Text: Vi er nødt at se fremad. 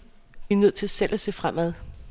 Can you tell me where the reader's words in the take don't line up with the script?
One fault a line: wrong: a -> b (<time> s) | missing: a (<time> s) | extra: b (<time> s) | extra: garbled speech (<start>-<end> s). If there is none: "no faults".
extra: til selv (0.7 s)